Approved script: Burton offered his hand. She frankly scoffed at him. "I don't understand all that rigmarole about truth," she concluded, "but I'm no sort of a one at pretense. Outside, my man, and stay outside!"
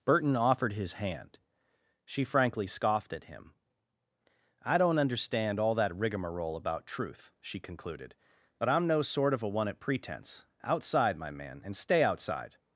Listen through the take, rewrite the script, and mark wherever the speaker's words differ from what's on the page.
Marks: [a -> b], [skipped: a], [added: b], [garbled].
Burton offered his hand. She frankly scoffed at him. "I don't understand all that rigmarole about truth," she concluded, "but I'm no sort of a one at pretense. Outside, my man, and stay outside!"